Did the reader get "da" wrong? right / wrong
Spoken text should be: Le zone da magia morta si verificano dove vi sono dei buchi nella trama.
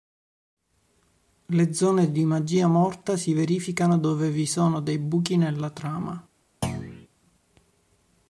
wrong